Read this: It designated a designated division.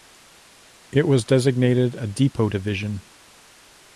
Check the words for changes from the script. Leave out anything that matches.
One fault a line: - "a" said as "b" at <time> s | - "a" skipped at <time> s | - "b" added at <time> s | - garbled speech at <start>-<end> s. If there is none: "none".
- "was" added at 1.1 s
- "designated" said as "depot" at 2.1 s